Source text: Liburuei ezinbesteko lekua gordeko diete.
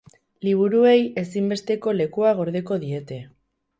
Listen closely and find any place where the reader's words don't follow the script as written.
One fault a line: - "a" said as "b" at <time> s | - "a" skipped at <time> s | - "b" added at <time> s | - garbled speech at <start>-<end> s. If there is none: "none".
none